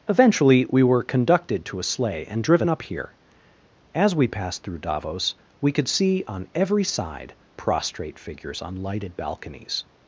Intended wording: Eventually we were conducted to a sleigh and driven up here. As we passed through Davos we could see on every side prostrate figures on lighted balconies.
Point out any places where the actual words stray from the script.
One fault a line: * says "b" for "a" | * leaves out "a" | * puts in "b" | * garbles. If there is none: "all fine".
all fine